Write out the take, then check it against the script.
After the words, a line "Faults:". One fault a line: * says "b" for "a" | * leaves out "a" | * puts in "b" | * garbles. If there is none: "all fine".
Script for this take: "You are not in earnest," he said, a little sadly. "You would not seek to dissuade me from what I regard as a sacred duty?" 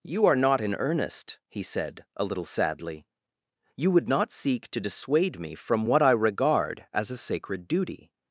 "You are not in earnest," he said, a little sadly. "You would not seek to dissuade me from what I regard as a sacred duty?"
Faults:
all fine